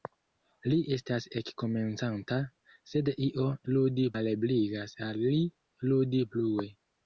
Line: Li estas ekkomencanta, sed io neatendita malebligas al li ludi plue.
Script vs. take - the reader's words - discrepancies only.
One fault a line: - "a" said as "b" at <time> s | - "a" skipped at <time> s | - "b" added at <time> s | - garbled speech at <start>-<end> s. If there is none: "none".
- "neatendita" said as "ludi" at 3.7 s